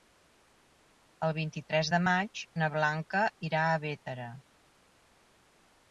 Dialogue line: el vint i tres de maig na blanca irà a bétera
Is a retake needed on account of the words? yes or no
no